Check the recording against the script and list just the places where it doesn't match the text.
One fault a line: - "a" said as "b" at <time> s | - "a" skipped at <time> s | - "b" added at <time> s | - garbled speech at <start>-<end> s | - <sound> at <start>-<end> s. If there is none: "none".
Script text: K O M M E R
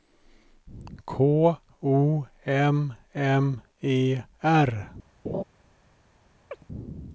- laugh at 5.2-5.4 s
- chirp at 6.5-6.6 s